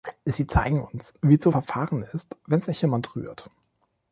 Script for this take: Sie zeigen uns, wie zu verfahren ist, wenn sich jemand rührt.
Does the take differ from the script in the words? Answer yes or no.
no